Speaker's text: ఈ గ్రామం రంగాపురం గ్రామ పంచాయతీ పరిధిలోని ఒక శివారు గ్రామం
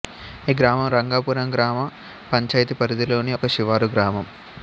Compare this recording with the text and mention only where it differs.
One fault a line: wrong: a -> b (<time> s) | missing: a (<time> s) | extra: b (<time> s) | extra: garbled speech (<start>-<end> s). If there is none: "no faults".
no faults